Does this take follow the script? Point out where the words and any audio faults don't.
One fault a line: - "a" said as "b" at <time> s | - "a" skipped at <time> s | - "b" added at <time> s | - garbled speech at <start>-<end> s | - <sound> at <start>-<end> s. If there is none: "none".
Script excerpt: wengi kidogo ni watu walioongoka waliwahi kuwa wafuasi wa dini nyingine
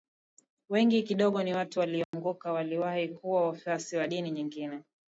- dropout at 2.0-2.1 s